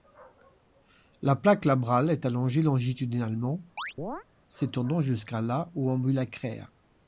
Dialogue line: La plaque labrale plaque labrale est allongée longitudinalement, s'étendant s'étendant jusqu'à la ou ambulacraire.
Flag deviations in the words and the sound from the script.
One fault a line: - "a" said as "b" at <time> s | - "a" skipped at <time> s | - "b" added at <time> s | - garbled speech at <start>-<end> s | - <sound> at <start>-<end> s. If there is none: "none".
- "plaque labrale" skipped at 2.1 s
- chirp at 3.8-4.2 s
- "s'étendant" skipped at 5.0 s